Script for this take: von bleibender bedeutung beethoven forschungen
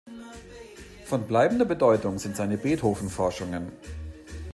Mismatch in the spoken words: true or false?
true